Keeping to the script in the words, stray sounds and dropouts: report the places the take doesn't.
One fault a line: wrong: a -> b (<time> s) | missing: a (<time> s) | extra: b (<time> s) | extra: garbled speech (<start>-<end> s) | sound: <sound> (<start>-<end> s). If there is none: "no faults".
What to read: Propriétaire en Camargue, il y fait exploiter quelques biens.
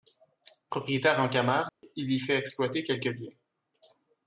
sound: dropout (1.7-1.8 s)